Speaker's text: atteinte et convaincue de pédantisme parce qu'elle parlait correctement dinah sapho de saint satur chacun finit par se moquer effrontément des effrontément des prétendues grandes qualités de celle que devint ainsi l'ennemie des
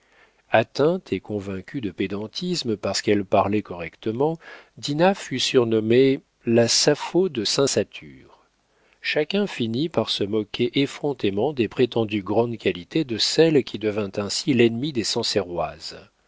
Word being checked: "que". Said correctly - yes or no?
no